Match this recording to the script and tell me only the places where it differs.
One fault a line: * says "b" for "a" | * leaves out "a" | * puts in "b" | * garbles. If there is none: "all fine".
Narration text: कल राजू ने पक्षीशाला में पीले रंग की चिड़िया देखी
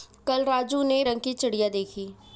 * leaves out "पक्षीशाला में पीले"